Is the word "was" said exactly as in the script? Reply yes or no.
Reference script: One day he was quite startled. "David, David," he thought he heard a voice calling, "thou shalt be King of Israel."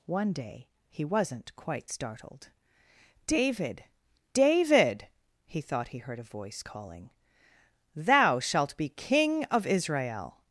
no